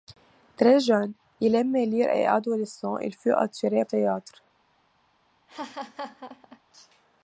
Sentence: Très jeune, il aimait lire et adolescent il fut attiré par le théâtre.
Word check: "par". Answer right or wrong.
wrong